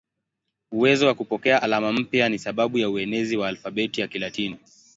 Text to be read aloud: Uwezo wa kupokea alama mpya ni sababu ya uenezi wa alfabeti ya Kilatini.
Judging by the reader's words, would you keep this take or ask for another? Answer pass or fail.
pass